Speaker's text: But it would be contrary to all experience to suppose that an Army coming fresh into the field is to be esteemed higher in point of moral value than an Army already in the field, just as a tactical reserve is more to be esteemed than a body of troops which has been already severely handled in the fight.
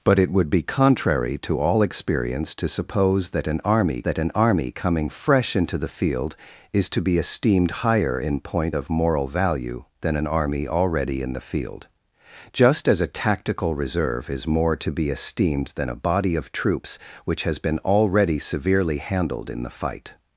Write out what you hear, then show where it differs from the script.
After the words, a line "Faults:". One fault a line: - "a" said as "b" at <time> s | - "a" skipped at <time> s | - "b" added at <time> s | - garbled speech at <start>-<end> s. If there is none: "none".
But it would be contrary to all experience to suppose that an Army that an Army coming fresh into the field is to be esteemed higher in point of moral value than an Army already in the field, just as a tactical reserve is more to be esteemed than a body of troops which has been already severely handled in the fight.
Faults:
- "that an Army" added at 4.0 s